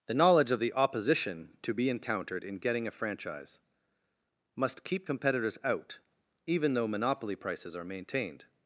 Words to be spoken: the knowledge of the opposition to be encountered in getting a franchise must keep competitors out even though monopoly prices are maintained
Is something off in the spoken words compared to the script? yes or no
no